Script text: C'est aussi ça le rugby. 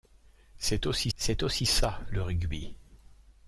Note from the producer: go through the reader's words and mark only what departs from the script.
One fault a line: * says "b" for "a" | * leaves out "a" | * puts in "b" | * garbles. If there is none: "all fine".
* puts in "c'est aussi"